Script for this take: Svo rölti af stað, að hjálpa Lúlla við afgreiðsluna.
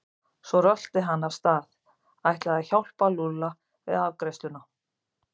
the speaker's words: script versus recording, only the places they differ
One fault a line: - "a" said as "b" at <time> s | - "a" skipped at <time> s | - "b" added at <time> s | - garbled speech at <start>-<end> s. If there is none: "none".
- "hann" added at 1.1 s
- "ætlaði" added at 2.3 s